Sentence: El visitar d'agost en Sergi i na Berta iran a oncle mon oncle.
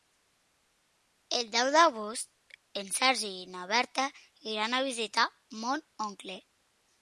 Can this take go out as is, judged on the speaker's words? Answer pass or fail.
fail